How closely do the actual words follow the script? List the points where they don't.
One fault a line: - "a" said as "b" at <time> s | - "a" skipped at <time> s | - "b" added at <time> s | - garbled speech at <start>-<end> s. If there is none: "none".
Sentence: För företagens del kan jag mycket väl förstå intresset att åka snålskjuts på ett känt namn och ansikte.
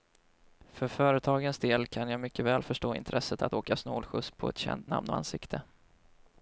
none